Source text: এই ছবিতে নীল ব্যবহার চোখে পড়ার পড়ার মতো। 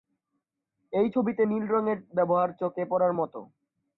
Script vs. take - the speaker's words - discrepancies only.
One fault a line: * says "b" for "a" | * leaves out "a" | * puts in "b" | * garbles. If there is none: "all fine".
* puts in "রঙের"
* leaves out "পড়ার"